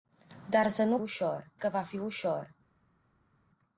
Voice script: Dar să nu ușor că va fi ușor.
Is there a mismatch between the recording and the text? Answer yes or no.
no